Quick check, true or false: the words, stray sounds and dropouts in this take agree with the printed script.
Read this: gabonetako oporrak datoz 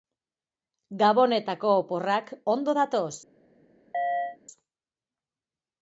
false